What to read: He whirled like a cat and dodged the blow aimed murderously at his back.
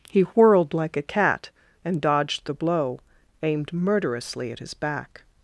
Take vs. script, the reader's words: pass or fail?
pass